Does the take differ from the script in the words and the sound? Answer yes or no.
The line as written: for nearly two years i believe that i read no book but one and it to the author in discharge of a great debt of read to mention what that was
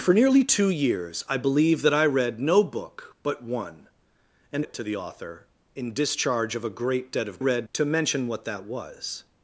no